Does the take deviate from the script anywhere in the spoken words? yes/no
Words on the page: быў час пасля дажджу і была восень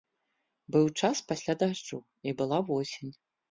no